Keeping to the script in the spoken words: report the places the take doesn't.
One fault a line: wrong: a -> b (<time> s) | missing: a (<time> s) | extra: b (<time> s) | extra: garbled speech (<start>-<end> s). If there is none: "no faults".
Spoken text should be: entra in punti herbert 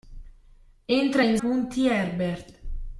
no faults